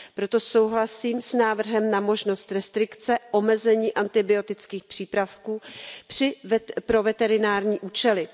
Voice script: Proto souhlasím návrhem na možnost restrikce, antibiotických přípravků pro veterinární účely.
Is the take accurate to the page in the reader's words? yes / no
no